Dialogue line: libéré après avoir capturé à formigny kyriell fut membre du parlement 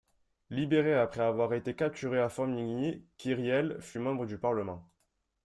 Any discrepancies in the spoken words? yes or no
yes